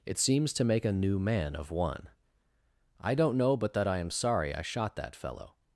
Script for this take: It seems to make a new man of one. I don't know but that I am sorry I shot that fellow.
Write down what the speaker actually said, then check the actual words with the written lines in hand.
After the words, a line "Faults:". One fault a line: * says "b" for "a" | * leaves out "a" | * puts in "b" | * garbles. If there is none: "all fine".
It seems to make a new man of one. I don't know but that I am sorry I shot that fellow.
Faults:
all fine